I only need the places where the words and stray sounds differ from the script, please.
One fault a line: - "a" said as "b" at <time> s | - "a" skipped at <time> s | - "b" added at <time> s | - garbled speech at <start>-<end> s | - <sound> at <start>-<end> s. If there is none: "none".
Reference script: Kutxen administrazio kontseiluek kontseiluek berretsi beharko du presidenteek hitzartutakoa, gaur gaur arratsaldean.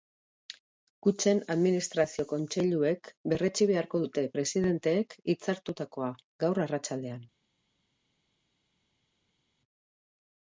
- "kontseiluek" skipped at 3.1 s
- "du" said as "dute" at 4.0 s
- "gaur" skipped at 6.6 s